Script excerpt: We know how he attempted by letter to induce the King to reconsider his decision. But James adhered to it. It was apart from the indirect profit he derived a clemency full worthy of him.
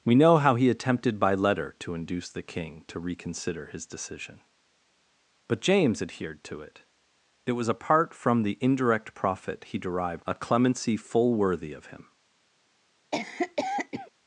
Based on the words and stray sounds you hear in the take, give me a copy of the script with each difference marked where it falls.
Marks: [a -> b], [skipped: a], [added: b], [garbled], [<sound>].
We know how he attempted by letter to induce the King to reconsider his decision. But James adhered to it. It was apart from the indirect profit he derived a clemency full worthy of him. [cough]